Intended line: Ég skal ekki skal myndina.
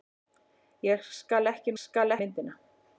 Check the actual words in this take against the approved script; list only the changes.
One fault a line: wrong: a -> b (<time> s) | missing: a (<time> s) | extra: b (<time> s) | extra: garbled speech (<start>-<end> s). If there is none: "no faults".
no faults